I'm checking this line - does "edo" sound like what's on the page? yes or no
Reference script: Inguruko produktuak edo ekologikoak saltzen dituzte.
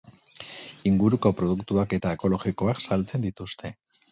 no